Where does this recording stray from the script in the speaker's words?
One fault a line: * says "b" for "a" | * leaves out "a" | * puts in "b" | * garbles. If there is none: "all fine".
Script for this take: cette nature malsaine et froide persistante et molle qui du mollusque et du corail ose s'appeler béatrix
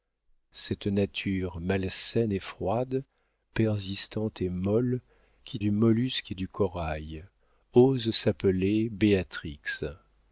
all fine